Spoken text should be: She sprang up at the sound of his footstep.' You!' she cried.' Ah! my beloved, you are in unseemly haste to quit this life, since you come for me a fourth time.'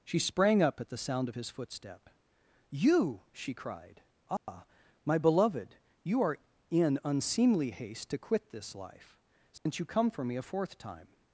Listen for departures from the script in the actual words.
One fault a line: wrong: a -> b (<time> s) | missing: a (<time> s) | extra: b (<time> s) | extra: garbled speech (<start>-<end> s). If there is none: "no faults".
no faults